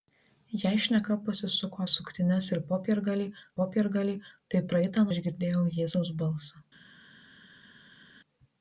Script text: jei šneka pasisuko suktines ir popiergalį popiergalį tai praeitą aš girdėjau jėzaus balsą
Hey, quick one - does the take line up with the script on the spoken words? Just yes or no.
yes